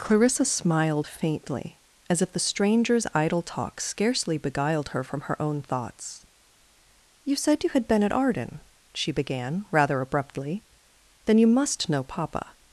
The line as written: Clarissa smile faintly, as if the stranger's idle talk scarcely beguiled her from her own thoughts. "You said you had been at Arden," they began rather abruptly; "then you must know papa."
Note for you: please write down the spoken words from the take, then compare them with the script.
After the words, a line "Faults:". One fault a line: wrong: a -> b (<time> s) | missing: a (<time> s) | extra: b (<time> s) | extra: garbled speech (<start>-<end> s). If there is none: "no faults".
Clarissa smiled faintly, as if the stranger's idle talk scarcely beguiled her from her own thoughts. "You said you had been at Arden," she began rather abruptly; "then you must know papa."
Faults:
wrong: smile -> smiled (0.5 s)
wrong: they -> she (8.9 s)